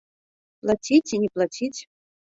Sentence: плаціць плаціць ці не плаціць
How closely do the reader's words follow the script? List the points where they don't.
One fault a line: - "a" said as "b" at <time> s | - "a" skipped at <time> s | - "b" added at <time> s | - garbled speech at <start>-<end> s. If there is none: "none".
- "плаціць" skipped at 1.0 s